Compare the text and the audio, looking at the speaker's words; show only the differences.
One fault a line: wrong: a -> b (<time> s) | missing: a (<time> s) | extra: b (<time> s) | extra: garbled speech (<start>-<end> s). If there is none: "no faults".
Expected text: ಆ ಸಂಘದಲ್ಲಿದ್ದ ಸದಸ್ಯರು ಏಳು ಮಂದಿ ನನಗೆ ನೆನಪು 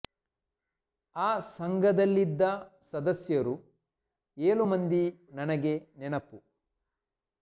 no faults